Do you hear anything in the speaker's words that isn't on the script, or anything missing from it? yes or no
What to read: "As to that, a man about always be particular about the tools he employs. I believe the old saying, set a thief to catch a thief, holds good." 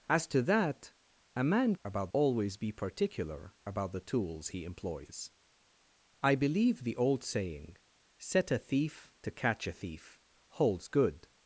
no